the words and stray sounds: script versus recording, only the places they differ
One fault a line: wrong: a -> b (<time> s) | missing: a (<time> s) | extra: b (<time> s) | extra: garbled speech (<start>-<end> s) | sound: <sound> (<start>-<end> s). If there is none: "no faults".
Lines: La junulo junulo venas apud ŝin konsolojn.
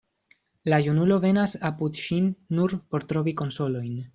missing: junulo (1.2 s)
extra: nur por trovi (2.6 s)